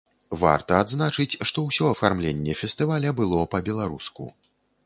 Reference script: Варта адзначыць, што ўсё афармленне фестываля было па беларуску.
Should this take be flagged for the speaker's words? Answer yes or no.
no